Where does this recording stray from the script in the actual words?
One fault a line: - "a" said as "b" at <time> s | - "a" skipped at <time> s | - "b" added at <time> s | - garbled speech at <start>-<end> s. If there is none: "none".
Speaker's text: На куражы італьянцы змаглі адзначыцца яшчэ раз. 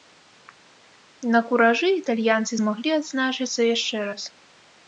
none